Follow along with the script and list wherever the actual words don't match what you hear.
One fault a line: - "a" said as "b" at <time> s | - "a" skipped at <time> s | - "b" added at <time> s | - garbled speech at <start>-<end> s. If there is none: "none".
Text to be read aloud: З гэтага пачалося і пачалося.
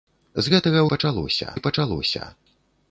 none